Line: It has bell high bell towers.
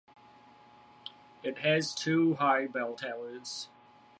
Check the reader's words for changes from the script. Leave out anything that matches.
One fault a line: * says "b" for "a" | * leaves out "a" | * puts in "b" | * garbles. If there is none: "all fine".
* says "two" for "bell"